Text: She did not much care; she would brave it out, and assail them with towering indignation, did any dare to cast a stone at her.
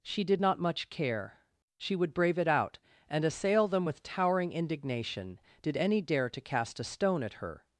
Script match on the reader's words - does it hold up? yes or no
yes